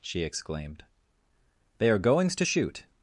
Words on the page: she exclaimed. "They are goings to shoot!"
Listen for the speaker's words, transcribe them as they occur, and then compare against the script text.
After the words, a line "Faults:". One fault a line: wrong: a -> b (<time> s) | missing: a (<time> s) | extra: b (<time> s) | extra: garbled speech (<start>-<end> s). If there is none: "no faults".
she exclaimed. "They are goings to shoot!"
Faults:
no faults